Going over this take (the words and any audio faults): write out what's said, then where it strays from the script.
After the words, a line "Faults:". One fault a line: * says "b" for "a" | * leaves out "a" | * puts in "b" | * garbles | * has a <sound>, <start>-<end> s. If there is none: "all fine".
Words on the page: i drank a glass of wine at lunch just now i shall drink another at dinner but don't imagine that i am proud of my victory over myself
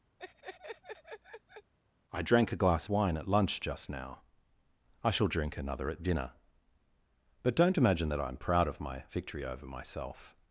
i drank a glass wine at lunch just now i shall drink another at dinner but don't imagine that i am proud of my victory over myself
Faults:
* has a laugh, 0.2-1.7 s
* leaves out "of"